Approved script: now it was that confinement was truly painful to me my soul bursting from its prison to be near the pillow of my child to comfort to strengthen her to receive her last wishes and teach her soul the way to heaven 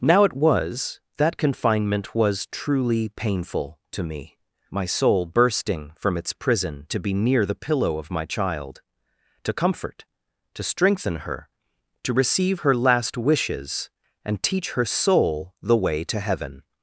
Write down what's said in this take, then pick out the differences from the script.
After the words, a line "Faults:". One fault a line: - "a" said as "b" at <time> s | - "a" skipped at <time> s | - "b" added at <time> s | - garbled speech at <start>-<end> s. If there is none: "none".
now it was that confinement was truly painful to me my soul bursting from its prison to be near the pillow of my child to comfort to strengthen her to receive her last wishes and teach her soul the way to heaven
Faults:
none